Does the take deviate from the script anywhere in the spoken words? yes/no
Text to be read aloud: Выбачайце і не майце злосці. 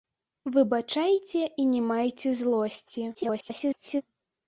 yes